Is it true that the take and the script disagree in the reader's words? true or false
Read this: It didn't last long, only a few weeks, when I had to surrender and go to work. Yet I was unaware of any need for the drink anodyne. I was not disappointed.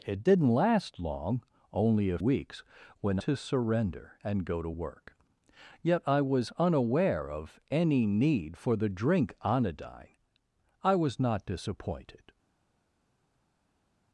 true